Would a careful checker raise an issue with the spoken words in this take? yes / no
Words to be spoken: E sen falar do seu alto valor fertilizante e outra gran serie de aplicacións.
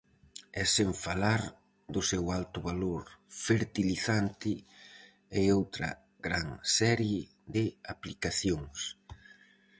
no